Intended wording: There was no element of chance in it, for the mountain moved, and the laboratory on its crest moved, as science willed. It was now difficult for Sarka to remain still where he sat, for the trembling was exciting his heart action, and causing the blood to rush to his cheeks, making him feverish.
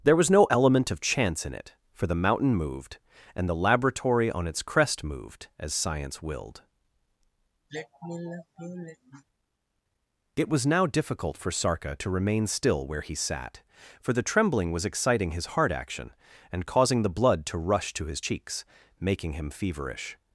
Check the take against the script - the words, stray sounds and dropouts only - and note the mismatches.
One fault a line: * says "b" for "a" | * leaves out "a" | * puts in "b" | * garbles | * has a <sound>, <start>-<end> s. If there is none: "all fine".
* has a sigh, 7.7-9.2 s